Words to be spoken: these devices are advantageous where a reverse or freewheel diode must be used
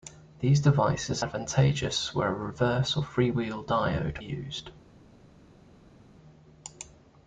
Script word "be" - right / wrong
wrong